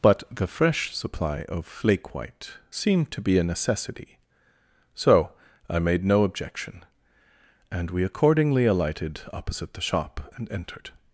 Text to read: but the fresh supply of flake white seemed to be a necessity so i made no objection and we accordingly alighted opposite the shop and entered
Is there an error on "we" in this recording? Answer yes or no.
no